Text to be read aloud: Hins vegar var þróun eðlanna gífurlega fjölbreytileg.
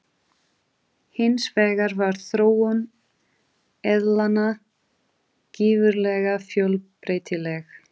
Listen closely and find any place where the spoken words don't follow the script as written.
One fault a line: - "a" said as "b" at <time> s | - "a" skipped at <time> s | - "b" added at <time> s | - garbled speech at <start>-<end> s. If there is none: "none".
none